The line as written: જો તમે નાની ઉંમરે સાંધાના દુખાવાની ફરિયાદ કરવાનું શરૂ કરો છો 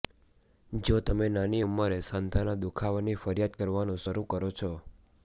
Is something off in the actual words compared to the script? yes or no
no